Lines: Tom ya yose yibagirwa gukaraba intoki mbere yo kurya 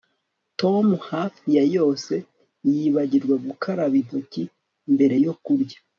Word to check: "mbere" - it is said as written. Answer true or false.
true